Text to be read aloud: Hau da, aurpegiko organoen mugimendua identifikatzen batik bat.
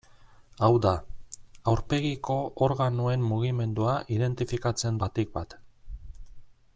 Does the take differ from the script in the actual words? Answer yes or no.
no